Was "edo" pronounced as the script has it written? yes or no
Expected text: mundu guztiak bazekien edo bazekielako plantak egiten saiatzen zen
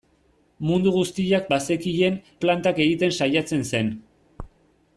no